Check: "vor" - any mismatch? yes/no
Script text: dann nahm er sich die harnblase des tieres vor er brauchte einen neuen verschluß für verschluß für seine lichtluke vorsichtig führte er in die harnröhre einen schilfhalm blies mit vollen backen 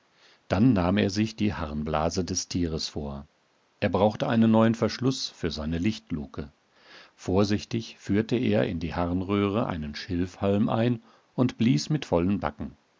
no